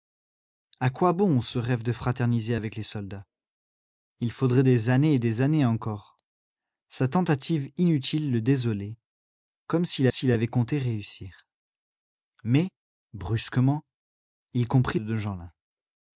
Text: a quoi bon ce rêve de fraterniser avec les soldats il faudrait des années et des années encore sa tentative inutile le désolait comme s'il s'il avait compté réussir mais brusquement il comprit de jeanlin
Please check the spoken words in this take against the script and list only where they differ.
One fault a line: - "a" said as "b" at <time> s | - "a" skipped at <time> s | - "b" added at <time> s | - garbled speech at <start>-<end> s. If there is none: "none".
none